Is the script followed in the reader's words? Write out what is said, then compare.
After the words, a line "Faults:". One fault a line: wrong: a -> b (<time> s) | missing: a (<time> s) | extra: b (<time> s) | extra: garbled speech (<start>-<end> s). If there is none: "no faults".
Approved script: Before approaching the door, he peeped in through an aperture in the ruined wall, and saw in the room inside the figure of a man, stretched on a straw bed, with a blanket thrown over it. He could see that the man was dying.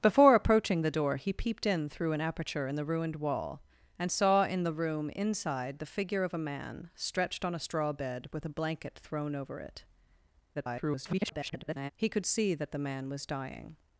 Before approaching the door, he peeped in through an aperture in the ruined wall, and saw in the room inside the figure of a man, stretched on a straw bed, with a blanket thrown over it. [garbled] He could see that the man was dying.
Faults:
extra: garbled speech (10.5-11.9 s)